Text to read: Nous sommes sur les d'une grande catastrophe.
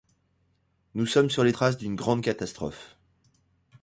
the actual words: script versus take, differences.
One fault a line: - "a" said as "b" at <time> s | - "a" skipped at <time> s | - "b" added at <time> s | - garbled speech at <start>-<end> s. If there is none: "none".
- "traces" added at 1.5 s